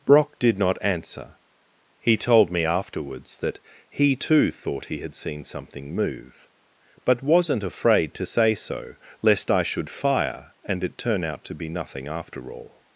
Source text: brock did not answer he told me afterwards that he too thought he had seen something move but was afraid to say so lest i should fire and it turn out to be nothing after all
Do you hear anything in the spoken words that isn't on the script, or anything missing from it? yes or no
yes